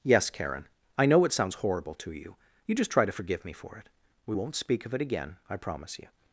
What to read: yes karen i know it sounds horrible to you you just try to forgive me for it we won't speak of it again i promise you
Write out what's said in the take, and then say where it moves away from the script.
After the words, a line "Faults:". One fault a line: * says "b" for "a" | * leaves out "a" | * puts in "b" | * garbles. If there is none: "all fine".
yes karen i know it sounds horrible to you you just try to forgive me for it we won't speak of it again i promise you
Faults:
all fine